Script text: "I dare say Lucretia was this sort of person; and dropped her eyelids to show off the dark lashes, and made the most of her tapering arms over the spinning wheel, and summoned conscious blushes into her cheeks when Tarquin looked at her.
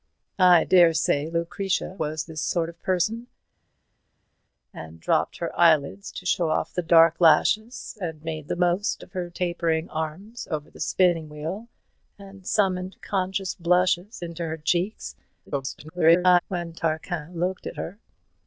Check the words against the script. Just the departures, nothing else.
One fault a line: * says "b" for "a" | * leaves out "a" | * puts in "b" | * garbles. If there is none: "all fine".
* garbles